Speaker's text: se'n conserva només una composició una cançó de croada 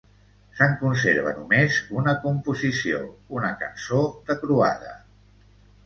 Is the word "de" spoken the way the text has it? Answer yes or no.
yes